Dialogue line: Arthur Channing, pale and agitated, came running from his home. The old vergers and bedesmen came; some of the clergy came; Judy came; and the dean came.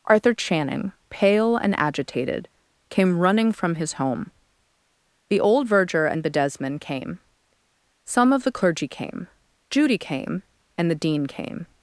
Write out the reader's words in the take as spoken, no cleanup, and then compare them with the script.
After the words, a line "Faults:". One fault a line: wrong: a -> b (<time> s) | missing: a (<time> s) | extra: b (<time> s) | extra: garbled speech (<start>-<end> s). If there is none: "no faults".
Arthur Channing, pale and agitated, came running from his home. The old verger and bedesmen came; some of the clergy came; Judy came; and the dean came.
Faults:
wrong: vergers -> verger (5.7 s)